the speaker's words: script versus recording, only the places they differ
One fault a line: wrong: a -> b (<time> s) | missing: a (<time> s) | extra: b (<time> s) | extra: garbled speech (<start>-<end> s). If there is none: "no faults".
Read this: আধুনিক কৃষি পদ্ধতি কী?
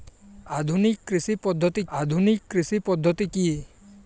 extra: আধুনিক কৃষি পদ্ধতি (1.9 s)